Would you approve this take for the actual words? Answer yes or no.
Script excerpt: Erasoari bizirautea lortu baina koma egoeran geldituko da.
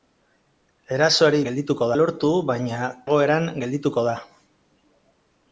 no